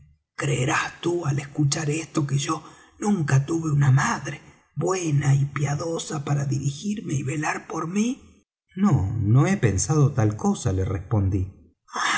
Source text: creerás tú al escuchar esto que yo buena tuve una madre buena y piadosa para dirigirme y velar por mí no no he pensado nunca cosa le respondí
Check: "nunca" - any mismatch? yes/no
yes